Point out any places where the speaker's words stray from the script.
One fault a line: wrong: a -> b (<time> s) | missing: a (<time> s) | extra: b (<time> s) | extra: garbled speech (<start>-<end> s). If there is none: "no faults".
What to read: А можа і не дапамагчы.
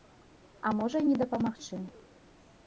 no faults